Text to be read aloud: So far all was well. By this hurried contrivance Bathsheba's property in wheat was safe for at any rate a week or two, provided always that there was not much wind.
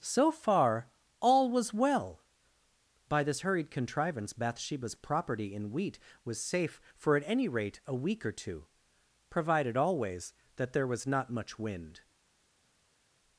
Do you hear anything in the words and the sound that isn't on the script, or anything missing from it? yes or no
no